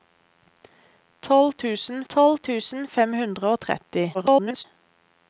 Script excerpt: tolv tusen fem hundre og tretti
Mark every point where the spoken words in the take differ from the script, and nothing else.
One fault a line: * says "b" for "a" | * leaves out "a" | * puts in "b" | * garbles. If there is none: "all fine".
* puts in "tolv tusen"
* garbles